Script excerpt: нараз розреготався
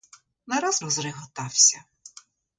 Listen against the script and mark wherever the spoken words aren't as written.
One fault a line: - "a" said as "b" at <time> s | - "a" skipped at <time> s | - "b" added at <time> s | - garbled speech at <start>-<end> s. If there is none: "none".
none